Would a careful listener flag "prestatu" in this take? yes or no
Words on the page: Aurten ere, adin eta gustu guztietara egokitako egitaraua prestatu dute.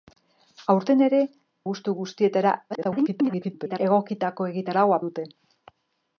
yes